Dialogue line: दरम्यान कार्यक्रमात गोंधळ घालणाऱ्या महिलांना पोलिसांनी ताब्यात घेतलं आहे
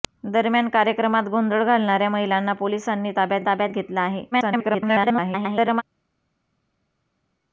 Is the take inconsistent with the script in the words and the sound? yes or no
yes